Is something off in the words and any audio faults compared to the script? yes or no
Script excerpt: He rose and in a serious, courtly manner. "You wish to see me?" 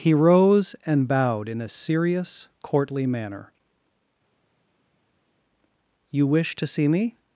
yes